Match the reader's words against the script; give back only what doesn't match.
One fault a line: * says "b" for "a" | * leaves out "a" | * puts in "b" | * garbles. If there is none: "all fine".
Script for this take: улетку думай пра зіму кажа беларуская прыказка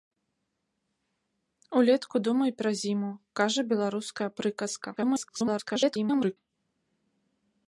* garbles